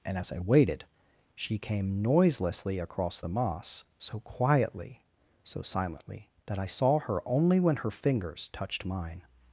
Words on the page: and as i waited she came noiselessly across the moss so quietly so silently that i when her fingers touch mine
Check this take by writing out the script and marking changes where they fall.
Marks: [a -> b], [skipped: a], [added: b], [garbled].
and as i waited she came noiselessly across the moss so quietly so silently that i [added: saw her only] when her fingers [touch -> touched] mine